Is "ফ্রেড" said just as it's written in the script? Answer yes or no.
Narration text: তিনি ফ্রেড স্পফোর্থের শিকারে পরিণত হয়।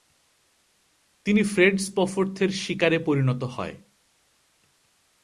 yes